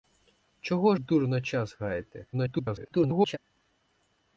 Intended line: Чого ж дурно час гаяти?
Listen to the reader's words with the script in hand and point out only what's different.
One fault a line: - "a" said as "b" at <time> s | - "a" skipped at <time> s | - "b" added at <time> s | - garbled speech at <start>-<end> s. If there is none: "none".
- "ж" skipped at 0.9 s
- garbled speech at 2.3-3.4 s